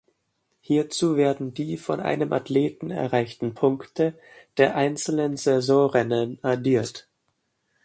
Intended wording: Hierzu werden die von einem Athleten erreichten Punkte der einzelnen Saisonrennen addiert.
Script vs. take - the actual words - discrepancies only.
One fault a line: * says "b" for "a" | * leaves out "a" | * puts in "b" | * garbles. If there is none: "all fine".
all fine